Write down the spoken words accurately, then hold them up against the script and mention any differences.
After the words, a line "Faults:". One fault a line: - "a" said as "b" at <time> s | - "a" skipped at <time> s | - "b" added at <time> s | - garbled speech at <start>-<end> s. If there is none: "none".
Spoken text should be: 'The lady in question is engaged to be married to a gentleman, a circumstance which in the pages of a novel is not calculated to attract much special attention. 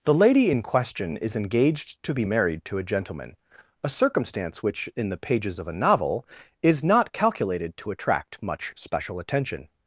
'The lady in question is engaged to be married to a gentleman, a circumstance which in the pages of a novel is not calculated to attract much special attention.
Faults:
none